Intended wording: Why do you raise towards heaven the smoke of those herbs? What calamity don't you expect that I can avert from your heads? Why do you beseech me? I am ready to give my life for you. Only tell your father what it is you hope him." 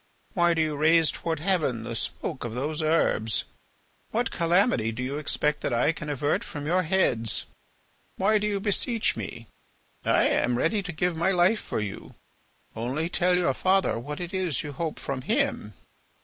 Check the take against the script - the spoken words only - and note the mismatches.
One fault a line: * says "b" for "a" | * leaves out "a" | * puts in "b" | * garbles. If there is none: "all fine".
* says "do" for "don't"
* puts in "from"